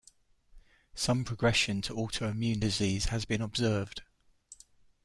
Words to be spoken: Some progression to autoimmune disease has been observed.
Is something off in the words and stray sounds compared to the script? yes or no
no